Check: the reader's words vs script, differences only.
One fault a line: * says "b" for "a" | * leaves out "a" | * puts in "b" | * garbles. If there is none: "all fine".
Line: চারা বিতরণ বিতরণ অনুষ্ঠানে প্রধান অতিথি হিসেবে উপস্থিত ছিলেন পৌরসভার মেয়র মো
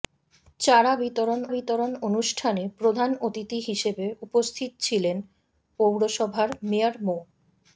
all fine